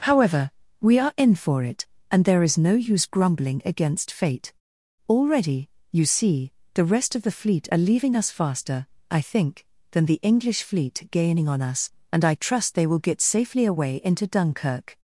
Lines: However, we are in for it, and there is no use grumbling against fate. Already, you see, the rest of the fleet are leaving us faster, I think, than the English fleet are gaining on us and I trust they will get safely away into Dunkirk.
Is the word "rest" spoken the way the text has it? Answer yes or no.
yes